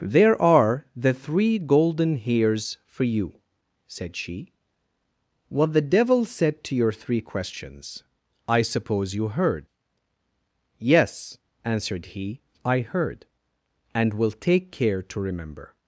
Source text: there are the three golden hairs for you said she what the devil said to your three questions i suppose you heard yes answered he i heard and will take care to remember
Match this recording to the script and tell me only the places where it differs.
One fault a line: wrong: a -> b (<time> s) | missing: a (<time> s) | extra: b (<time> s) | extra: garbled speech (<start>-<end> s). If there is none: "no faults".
no faults